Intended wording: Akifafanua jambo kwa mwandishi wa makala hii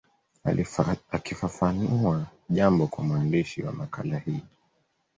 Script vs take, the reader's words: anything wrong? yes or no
no